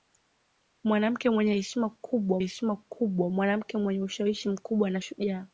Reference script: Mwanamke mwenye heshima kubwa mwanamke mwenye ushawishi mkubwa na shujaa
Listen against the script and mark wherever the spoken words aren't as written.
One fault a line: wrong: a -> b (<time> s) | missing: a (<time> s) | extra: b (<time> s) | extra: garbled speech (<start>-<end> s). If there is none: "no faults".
extra: heshima kubwa (2.4 s)